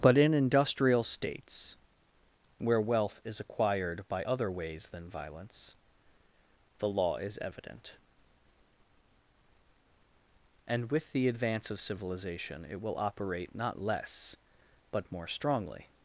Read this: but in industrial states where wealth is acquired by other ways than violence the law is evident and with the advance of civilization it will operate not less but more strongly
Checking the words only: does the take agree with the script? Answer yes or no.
yes